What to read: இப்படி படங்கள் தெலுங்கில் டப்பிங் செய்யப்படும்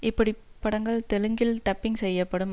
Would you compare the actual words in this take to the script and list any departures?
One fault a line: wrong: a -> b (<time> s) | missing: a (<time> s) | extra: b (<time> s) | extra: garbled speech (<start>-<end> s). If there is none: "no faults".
no faults